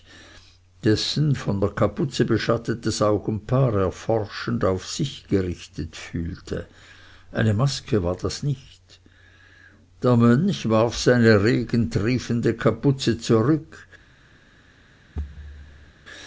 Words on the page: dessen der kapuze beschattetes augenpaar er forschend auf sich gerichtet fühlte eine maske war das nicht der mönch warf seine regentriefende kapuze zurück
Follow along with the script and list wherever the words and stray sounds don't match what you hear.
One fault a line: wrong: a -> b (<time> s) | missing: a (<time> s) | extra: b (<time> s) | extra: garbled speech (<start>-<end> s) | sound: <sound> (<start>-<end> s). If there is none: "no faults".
extra: von (1.4 s)
sound: thud (15.2-15.9 s)